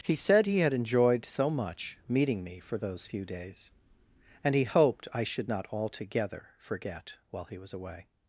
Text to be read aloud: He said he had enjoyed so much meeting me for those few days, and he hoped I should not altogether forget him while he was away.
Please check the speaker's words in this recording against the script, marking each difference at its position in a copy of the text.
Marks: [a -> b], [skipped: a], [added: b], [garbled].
He said he had enjoyed so much meeting me for those few days, and he hoped I should not altogether forget [skipped: him] while he was away.